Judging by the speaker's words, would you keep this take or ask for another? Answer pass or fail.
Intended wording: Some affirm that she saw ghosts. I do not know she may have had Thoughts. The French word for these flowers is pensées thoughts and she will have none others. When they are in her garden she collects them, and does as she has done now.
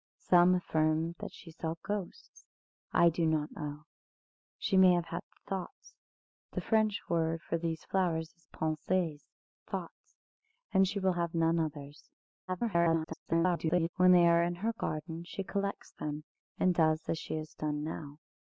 fail